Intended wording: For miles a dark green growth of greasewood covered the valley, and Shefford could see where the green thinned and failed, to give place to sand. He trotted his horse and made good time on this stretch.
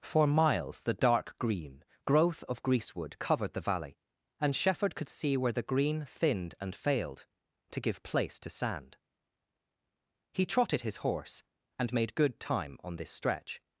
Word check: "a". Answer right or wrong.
wrong